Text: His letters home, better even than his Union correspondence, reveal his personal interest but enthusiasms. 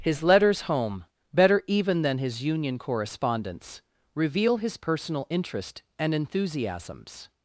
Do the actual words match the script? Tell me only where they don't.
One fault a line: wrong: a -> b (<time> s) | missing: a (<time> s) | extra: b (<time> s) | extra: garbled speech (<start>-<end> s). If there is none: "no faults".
wrong: but -> and (6.0 s)